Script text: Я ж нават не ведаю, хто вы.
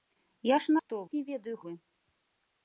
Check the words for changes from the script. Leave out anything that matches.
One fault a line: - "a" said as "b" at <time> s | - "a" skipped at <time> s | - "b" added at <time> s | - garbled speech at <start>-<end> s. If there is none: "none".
- "нават" said as "хто" at 0.8 s
- "хто" skipped at 1.6 s